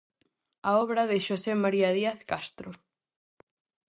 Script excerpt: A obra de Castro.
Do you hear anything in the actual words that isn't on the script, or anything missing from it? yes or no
yes